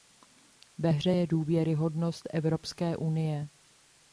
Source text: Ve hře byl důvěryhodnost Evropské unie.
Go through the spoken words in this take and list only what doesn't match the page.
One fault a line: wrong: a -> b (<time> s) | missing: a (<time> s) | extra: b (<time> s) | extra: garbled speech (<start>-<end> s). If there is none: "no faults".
wrong: byl -> je (1.1 s)